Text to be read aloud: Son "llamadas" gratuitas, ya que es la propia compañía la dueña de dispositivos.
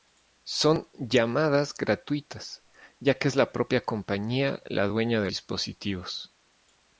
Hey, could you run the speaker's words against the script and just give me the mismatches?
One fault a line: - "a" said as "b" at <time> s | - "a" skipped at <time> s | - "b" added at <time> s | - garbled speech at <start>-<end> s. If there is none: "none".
none